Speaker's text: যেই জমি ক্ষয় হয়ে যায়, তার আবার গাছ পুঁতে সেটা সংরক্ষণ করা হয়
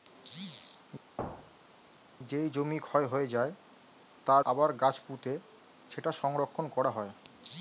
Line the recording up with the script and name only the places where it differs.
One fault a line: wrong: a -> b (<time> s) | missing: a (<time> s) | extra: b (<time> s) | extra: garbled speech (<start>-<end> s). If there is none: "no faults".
no faults